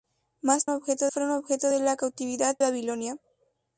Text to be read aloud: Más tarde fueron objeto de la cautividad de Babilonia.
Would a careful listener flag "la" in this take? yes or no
no